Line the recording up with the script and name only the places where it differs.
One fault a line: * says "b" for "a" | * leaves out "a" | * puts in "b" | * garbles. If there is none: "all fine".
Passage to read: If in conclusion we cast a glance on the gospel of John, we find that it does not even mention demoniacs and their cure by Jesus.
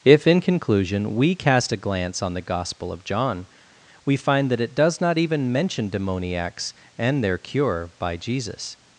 all fine